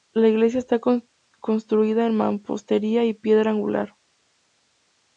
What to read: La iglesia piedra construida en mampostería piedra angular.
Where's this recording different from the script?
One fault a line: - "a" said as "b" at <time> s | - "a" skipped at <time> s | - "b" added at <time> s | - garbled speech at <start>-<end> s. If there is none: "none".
- "piedra" said as "está" at 0.6 s
- "y" added at 3.0 s